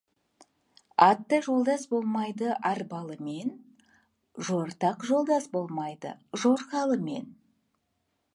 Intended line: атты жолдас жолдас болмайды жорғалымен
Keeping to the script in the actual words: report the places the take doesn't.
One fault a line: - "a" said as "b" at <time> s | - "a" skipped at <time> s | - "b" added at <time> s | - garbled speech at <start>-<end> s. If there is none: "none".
- "болмайды арбалымен жортақ" added at 1.9 s